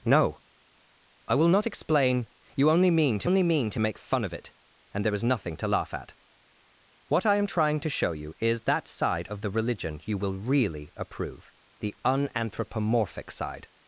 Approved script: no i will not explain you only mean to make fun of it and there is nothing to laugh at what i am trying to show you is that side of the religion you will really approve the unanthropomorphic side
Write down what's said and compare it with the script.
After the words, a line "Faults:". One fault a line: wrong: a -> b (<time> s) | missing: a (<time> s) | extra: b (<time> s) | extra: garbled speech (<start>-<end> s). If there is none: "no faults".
no i will not explain you only mean to only mean to make fun of it and there is nothing to laugh at what i am trying to show you is that side of the religion you will really approve the unanthropomorphic side
Faults:
extra: only mean to (3.2 s)